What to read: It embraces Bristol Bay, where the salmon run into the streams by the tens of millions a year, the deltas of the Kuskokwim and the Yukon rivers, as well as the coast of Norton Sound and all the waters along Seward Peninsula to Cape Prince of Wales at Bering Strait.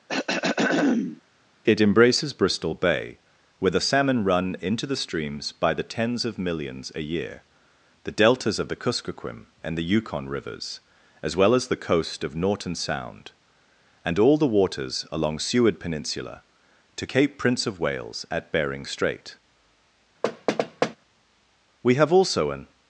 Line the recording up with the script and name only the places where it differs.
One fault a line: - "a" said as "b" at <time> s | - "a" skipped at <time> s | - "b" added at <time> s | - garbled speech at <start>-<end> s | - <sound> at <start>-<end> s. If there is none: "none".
- throat clearing at 0.1-1.2 s
- thud at 20.2-21.0 s
- "We have also an" added at 21.8 s